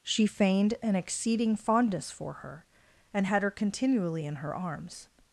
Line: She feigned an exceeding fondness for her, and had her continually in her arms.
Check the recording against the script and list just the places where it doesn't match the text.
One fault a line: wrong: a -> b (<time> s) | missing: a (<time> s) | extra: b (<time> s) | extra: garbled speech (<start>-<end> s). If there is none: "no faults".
no faults